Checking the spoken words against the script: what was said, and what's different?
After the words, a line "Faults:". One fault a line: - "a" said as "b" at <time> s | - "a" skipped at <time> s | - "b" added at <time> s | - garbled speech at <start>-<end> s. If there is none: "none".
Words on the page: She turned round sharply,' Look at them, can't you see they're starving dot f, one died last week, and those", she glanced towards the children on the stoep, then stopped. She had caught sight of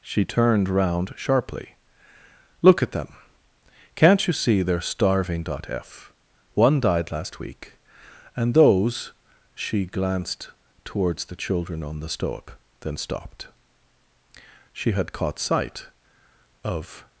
She turned round sharply,' Look at them, can't you see they're starving dot f, one died last week, and those", she glanced towards the children on the stoep, then stopped. She had caught sight of
Faults:
none